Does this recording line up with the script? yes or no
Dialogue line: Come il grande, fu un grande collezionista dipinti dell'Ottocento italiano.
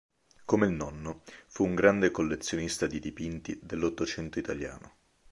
no